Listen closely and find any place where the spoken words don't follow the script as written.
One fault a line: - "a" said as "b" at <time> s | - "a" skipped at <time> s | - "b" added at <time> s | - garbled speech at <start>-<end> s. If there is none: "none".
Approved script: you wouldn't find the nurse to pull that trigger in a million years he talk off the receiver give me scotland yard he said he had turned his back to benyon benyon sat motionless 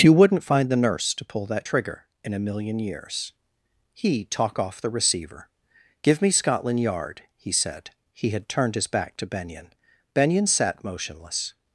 none